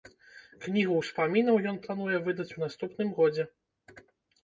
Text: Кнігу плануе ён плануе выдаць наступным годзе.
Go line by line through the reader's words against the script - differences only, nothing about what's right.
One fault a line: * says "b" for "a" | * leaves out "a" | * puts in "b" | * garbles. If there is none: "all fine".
* says "ўспамінаў" for "плануе"
* puts in "у"